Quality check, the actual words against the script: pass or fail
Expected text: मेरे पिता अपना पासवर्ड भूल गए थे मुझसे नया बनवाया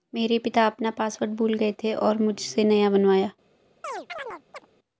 fail